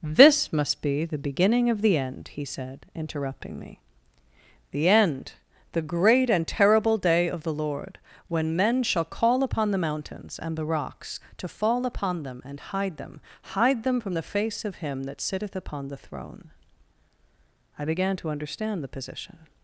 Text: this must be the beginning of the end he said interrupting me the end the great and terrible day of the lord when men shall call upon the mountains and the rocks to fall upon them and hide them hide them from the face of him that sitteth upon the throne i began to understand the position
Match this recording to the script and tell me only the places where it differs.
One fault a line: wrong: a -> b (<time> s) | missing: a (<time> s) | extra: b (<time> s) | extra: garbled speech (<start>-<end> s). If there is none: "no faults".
no faults